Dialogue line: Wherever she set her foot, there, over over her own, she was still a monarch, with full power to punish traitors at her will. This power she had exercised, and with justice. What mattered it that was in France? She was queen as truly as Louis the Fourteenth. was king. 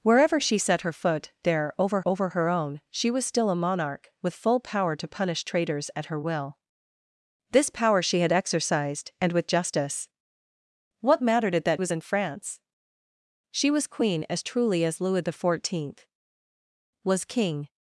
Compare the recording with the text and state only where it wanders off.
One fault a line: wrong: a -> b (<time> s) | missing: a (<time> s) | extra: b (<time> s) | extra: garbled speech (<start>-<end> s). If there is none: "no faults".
no faults